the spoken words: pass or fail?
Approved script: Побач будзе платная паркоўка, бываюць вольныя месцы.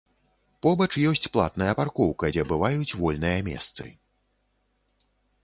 fail